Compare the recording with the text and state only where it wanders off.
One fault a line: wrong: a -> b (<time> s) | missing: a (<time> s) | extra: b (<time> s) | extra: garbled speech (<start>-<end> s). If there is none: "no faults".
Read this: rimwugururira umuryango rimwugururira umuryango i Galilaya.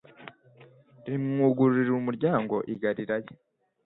missing: rimwugururira umuryango (2.5 s)